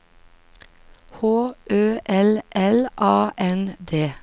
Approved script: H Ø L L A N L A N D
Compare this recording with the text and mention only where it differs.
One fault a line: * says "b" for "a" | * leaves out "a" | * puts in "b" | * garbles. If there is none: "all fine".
* leaves out "L A N"